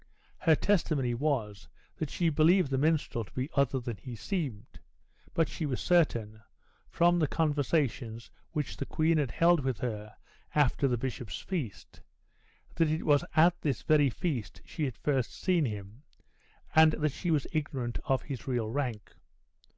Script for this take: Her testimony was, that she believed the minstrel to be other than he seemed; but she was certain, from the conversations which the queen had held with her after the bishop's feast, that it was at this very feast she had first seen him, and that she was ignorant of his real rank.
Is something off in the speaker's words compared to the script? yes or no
no